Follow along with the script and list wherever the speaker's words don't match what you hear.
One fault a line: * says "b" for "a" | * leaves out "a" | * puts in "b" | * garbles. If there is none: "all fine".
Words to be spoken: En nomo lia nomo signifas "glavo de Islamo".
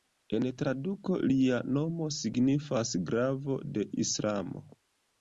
* says "traduko" for "nomo"